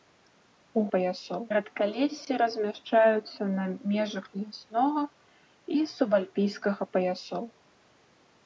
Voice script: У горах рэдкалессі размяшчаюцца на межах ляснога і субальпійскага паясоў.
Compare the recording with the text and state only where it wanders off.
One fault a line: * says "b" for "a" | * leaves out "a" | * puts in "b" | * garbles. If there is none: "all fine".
* says "паясоў" for "горах"